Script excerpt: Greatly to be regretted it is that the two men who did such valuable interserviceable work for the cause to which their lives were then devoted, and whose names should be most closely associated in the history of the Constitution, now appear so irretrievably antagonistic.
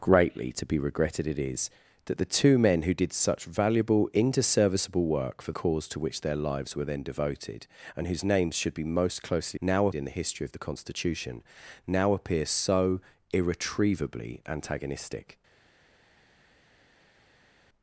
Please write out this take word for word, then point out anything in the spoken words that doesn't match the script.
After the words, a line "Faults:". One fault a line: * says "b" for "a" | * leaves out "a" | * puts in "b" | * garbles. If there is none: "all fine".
Greatly to be regretted it is that the two men who did such valuable interserviceable work for cause to which their lives were then devoted, and whose names should be most closely now in the history of the Constitution, now appear so irretrievably antagonistic.
Faults:
* leaves out "the"
* says "now" for "associated"